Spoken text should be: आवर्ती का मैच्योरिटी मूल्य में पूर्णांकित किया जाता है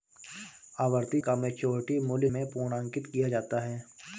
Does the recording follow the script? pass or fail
pass